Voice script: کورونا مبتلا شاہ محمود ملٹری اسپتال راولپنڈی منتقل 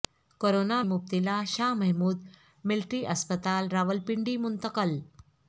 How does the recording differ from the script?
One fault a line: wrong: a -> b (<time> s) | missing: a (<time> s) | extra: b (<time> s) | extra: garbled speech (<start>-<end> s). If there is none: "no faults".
no faults